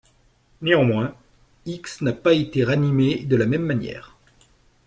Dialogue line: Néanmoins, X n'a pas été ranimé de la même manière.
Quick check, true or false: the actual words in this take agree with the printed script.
true